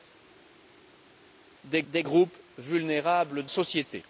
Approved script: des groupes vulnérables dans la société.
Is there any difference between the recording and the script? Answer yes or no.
yes